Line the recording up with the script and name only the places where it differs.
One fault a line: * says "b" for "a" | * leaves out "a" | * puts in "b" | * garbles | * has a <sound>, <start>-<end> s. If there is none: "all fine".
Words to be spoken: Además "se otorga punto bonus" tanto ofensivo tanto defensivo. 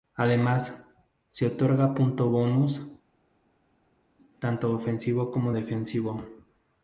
* says "como" for "tanto"